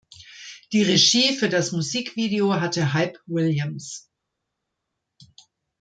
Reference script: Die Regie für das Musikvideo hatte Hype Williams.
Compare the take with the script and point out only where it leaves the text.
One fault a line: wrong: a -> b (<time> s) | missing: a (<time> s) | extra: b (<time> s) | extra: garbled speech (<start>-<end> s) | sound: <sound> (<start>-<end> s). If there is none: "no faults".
no faults